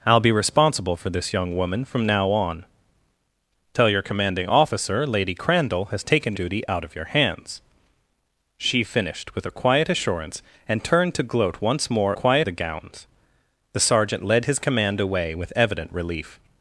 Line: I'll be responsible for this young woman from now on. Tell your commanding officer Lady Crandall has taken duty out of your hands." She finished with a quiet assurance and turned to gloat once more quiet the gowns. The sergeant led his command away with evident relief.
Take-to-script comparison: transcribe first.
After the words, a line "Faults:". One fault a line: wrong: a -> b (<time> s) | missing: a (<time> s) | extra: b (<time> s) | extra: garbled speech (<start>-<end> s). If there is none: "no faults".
I'll be responsible for this young woman from now on. Tell your commanding officer Lady Crandall has taken duty out of your hands." She finished with a quiet assurance and turned to gloat once more quiet the gowns. The sergeant led his command away with evident relief.
Faults:
no faults